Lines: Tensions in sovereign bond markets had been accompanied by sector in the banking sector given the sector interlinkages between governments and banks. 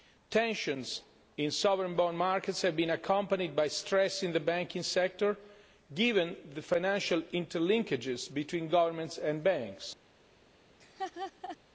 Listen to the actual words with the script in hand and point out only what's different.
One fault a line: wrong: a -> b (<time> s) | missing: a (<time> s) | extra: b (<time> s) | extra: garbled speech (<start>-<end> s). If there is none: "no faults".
wrong: had -> have (2.6 s)
wrong: sector -> stress (3.7 s)
wrong: sector -> financial (6.6 s)